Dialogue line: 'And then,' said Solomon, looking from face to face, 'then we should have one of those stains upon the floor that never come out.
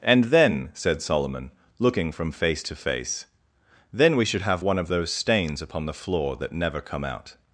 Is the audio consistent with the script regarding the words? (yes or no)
yes